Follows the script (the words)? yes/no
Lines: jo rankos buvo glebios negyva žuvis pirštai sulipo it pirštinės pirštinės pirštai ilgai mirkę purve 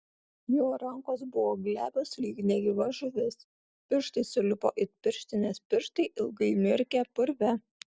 no